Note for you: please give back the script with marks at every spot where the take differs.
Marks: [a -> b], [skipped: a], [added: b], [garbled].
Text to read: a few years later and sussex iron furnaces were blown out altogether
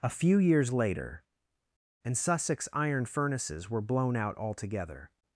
a few years later and sussex iron furnaces were blown out altogether